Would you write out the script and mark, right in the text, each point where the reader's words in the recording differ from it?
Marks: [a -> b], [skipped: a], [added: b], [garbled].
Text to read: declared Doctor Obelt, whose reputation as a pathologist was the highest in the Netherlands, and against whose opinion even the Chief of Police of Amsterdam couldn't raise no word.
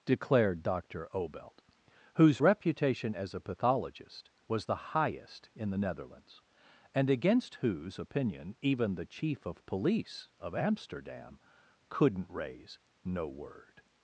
declared Doctor Obelt, whose reputation as a pathologist was the highest in the Netherlands, and against whose opinion even the Chief of Police of Amsterdam couldn't raise no word.